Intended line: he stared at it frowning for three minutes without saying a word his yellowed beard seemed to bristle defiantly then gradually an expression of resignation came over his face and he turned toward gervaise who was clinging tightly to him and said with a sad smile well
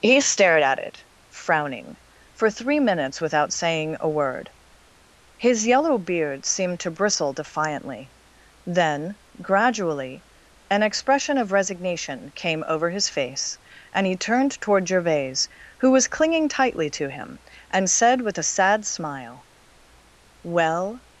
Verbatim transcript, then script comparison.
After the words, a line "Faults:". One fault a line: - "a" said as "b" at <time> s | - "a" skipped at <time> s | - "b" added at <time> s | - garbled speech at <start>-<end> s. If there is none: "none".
he stared at it frowning for three minutes without saying a word his yellow beard seemed to bristle defiantly then gradually an expression of resignation came over his face and he turned toward gervaise who was clinging tightly to him and said with a sad smile well
Faults:
- "yellowed" said as "yellow" at 5.7 s